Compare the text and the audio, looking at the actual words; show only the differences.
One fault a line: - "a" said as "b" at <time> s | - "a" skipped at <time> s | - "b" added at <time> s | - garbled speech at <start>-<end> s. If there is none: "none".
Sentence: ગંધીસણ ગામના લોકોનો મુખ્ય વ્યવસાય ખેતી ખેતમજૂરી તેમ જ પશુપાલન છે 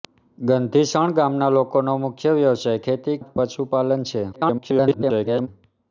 - "ખેતમજૂરી તેમ" skipped at 3.2 s
- garbled speech at 4.3-5.5 s